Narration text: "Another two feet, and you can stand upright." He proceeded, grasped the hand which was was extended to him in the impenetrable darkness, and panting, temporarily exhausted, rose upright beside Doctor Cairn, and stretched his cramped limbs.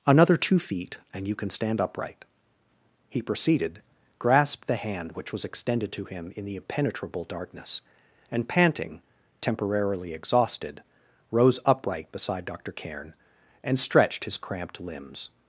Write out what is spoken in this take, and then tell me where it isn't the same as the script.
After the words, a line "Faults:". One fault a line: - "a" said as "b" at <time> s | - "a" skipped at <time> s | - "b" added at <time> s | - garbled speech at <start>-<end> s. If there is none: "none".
"Another two feet, and you can stand upright." He proceeded, grasped the hand which was extended to him in the impenetrable darkness, and panting, temporarily exhausted, rose upright beside Doctor Cairn, and stretched his cramped limbs.
Faults:
- "was" skipped at 5.5 s